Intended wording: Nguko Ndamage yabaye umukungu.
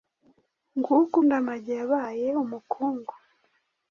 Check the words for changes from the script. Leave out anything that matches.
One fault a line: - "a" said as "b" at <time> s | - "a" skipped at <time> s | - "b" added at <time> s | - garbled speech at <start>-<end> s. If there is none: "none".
none